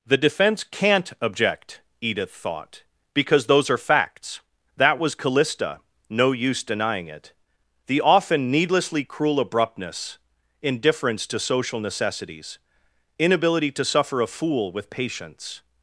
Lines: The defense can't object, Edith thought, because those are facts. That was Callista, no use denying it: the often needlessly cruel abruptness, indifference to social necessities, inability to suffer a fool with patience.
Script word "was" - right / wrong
right